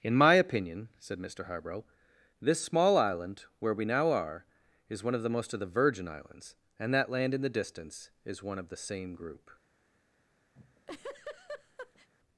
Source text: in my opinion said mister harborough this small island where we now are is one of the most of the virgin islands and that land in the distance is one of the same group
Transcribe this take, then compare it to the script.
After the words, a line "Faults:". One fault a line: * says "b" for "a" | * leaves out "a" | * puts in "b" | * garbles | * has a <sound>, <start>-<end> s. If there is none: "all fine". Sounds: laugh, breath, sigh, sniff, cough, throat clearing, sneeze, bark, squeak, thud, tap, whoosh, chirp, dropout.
in my opinion said mister harborough this small island where we now are is one of the most of the virgin islands and that land in the distance is one of the same group
Faults:
* has a laugh, 10.6-12.1 s